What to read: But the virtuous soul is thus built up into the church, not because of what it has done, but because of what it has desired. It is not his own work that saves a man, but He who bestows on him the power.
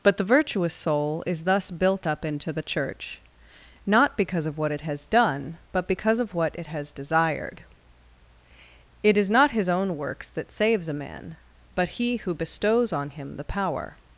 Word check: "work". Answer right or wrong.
wrong